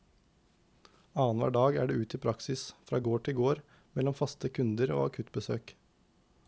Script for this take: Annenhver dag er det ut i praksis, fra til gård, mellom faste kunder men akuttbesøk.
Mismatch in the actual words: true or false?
true